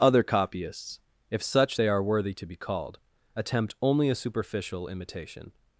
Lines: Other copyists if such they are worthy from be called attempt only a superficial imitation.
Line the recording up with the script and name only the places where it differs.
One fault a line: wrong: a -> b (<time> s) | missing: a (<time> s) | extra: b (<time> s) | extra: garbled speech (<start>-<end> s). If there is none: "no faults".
wrong: from -> to (2.3 s)